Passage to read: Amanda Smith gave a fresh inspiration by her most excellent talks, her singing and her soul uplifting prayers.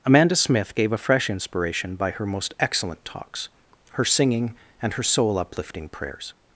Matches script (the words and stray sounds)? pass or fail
pass